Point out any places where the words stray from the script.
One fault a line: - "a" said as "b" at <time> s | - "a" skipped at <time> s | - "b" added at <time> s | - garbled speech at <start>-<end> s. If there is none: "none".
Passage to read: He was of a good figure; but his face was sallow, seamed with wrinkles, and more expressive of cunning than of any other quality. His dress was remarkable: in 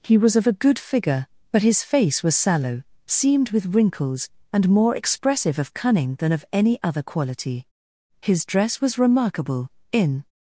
none